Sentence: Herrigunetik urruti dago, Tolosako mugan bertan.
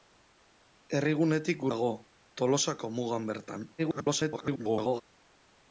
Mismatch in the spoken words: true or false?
true